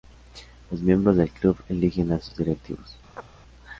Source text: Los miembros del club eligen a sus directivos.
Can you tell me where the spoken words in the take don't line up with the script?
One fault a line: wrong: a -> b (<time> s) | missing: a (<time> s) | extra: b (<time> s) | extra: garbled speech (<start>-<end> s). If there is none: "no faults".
no faults